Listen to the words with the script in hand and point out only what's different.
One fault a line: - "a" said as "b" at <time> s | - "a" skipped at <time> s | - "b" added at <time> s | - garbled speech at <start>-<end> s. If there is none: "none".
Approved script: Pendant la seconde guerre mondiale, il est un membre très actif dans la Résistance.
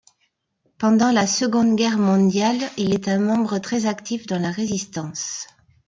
none